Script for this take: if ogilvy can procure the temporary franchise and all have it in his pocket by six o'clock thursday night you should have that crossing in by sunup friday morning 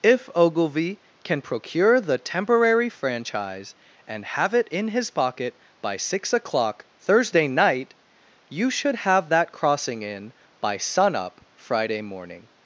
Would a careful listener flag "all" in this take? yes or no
yes